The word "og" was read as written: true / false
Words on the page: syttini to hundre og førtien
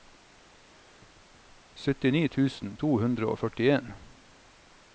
true